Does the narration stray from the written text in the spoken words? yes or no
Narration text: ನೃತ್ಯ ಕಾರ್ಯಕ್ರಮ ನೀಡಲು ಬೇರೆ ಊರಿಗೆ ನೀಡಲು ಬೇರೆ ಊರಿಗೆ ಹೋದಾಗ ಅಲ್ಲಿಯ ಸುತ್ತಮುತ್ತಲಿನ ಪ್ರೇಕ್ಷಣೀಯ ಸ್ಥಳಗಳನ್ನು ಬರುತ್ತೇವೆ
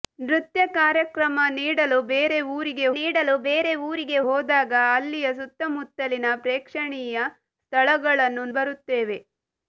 no